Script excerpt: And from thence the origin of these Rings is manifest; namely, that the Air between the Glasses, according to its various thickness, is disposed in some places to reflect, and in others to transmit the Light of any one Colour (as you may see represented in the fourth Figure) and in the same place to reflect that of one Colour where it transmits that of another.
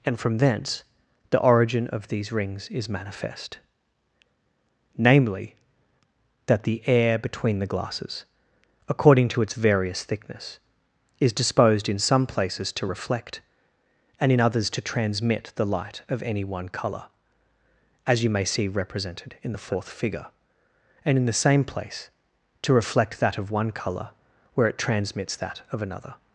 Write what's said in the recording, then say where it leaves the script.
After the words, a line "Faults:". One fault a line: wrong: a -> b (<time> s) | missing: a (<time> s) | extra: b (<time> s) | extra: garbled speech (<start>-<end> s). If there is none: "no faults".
And from thence the origin of these Rings is manifest; namely, that the Air between the Glasses, according to its various thickness, is disposed in some places to reflect, and in others to transmit the Light of any one Colour (as you may see represented in the fourth Figure) and in the same place to reflect that of one Colour where it transmits that of another.
Faults:
no faults